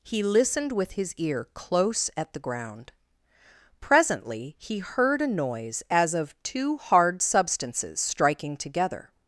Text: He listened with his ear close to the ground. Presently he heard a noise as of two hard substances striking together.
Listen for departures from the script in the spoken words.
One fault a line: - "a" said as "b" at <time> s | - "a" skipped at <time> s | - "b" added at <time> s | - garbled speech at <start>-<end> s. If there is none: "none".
- "to" said as "at" at 2.2 s